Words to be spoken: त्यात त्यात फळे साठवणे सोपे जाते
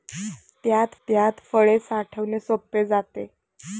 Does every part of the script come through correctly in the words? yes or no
yes